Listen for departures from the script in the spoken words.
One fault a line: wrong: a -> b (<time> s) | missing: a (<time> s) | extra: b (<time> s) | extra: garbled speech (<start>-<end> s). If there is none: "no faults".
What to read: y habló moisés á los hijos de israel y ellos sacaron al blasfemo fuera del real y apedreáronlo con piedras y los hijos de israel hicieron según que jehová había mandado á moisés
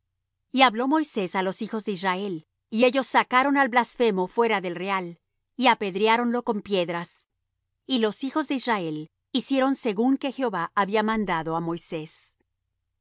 no faults